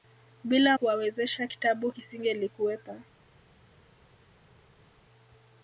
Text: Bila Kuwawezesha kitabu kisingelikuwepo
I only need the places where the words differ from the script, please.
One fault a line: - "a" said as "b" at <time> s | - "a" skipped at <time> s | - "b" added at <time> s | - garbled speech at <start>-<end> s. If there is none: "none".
none